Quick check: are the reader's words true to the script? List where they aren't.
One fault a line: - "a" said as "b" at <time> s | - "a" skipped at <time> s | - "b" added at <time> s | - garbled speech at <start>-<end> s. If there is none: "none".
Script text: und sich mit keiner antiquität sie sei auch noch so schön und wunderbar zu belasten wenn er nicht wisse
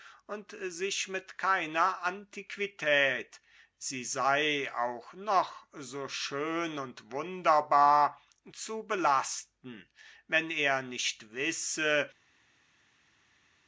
none